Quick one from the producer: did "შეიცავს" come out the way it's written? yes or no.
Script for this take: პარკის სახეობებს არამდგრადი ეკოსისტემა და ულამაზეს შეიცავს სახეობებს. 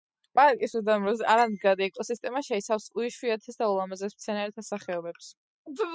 no